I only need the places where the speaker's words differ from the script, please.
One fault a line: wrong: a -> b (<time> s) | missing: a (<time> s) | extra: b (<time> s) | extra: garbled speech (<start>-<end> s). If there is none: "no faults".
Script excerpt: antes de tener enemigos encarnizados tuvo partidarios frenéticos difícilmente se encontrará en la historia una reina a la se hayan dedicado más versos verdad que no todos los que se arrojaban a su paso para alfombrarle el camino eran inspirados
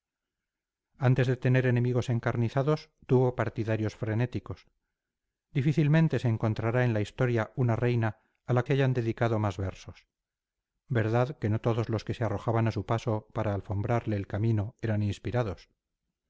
no faults